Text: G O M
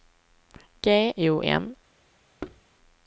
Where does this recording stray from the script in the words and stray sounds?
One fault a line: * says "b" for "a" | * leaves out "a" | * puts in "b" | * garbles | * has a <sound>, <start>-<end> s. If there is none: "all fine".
* has a thud, 2.4-2.6 s